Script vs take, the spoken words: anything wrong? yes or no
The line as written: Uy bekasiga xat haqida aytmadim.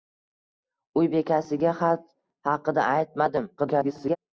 yes